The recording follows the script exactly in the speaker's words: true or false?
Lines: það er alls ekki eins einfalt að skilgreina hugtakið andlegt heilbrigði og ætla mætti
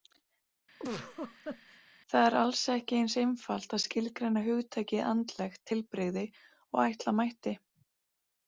true